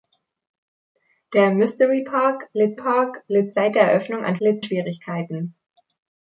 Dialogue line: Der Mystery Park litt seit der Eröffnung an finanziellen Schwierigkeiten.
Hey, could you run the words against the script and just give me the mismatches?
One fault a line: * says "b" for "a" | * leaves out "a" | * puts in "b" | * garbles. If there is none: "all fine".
* puts in "Park litt"
* says "litt" for "finanziellen"